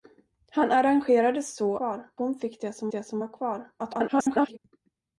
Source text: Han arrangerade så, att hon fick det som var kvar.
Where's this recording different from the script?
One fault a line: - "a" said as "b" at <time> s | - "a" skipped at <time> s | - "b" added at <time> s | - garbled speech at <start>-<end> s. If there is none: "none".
- "att" said as "kvar" at 1.8 s
- "det som" added at 2.9 s
- garbled speech at 3.8-4.6 s